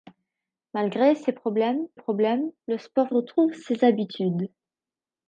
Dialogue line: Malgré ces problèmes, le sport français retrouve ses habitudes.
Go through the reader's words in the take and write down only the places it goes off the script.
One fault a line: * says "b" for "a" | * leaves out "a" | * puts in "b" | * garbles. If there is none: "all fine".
* puts in "problèmes"
* leaves out "français"